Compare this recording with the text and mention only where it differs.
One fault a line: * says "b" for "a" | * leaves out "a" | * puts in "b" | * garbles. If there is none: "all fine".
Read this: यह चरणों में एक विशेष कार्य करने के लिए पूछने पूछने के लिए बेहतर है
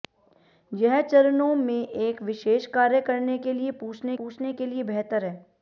all fine